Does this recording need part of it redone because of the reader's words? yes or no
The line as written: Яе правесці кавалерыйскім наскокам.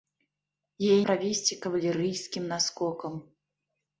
no